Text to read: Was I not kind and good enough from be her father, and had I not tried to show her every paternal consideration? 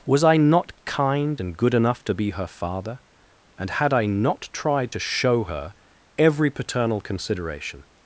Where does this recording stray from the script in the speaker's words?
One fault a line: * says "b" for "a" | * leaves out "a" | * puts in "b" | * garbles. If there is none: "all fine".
* says "to" for "from"